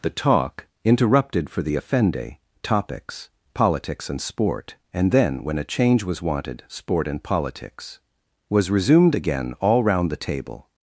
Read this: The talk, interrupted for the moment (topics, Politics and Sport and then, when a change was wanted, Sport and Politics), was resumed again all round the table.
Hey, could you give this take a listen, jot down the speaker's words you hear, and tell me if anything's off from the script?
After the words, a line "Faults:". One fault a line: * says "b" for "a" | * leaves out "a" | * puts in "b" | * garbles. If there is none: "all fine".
The talk, interrupted for the offende (topics, Politics and Sport and then, when a change was wanted, Sport and Politics), was resumed again all round the table.
Faults:
* says "offende" for "moment"